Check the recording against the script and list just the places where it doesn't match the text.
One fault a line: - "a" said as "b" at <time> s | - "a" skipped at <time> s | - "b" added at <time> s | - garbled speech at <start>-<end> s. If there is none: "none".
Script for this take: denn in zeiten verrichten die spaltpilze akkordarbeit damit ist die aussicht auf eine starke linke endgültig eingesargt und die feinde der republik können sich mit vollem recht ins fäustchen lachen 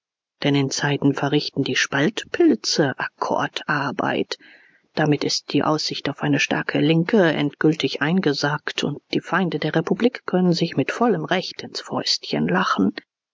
none